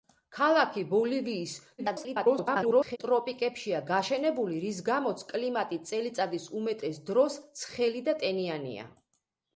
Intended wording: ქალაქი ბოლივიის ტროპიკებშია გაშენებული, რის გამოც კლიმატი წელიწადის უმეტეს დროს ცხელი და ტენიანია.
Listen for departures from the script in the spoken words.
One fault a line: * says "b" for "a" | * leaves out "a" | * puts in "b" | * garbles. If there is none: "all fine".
* garbles